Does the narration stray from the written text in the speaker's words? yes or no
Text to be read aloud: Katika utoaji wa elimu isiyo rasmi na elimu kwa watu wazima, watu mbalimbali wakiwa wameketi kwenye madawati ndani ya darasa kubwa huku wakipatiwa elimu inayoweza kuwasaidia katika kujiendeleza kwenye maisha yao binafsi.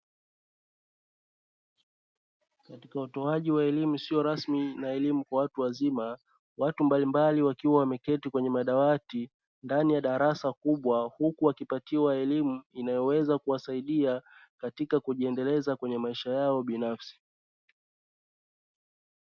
no